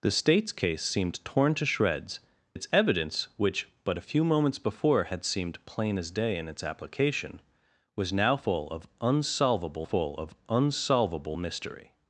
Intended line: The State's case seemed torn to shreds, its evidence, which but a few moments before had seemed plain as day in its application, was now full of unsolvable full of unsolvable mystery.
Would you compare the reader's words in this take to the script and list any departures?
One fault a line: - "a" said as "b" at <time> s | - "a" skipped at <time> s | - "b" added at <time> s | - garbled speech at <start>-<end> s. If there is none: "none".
none